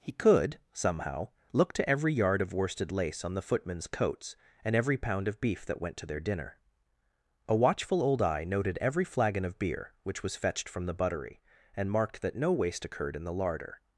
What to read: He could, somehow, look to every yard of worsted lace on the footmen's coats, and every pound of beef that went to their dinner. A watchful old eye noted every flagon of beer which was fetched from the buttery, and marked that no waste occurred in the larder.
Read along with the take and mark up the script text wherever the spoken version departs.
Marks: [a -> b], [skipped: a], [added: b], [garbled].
He could, somehow, look to every yard of worsted lace on the footmen's coats, and every pound of beef that went to their dinner. A watchful old eye noted every flagon of beer which was fetched from the buttery, and marked that no waste occurred in the larder.